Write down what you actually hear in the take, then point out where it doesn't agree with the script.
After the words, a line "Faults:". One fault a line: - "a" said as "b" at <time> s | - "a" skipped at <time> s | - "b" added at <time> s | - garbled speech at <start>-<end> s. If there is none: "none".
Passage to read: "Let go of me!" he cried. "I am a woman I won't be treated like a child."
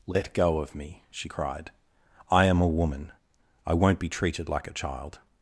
"Let go of me!" she cried. "I am a woman I won't be treated like a child."
Faults:
- "he" said as "she" at 1.1 s